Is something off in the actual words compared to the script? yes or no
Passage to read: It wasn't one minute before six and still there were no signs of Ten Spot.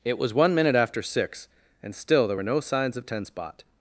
yes